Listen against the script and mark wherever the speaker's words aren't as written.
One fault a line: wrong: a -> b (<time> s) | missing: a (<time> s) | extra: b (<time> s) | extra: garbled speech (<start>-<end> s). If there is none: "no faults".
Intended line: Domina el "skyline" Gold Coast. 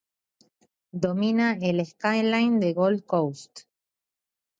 extra: de (2.6 s)